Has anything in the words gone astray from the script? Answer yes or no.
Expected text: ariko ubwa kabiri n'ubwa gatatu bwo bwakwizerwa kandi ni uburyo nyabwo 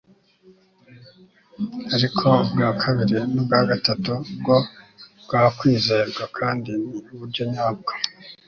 no